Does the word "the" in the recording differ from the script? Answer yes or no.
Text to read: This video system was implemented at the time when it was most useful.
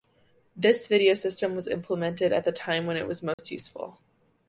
no